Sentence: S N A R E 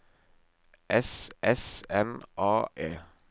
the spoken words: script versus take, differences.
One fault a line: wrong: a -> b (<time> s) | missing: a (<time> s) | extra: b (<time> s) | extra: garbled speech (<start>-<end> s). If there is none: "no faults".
extra: s (1.4 s)
missing: R (2.7 s)